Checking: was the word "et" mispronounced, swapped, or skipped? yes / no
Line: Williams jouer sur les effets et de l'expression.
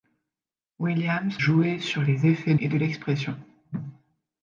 no